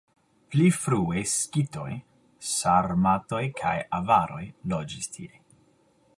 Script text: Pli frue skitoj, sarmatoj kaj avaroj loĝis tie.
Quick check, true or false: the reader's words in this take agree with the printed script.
true